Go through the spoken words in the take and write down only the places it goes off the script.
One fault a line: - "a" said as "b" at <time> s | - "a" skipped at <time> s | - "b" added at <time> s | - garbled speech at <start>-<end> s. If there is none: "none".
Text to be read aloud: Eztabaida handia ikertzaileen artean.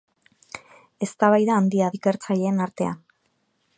none